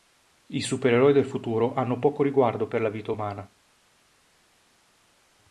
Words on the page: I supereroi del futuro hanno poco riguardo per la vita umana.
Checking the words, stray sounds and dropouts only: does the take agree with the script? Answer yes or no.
yes